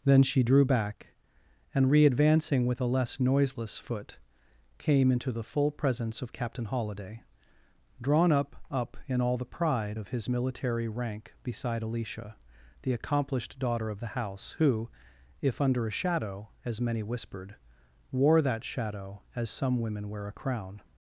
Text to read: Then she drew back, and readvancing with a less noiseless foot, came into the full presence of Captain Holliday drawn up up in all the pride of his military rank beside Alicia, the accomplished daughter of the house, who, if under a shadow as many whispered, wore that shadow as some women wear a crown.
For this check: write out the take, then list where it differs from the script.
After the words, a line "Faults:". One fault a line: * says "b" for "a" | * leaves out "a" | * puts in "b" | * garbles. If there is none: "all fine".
Then she drew back, and readvancing with a less noiseless foot, came into the full presence of Captain Holliday drawn up up in all the pride of his military rank beside Alicia, the accomplished daughter of the house, who, if under a shadow as many whispered, wore that shadow as some women wear a crown.
Faults:
all fine